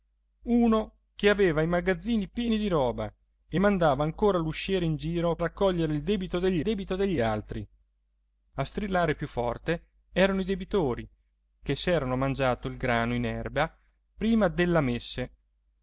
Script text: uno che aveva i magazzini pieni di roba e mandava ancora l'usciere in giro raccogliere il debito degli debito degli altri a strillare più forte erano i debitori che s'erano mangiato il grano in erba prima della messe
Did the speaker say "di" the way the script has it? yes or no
yes